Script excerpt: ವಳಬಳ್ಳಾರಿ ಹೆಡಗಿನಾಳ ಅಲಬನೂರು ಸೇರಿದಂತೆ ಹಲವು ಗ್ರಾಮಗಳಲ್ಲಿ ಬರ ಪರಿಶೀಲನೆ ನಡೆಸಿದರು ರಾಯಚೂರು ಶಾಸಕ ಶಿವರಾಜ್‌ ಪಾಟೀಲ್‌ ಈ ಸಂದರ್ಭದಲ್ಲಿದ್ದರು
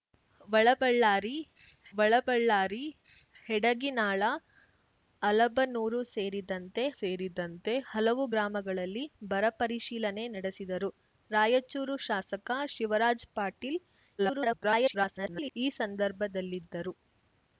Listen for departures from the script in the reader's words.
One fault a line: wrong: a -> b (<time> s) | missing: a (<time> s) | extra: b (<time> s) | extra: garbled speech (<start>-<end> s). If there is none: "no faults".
extra: ವಳಬಳ್ಳಾರಿ (1.9 s)
extra: ಸೇರಿದಂತೆ (7.0 s)
extra: garbled speech (14.2-15.5 s)